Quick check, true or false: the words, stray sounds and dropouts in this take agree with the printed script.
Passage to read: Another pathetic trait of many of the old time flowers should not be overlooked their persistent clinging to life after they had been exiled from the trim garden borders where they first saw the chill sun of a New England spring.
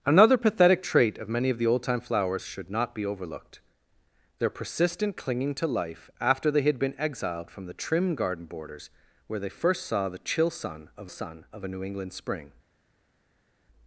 false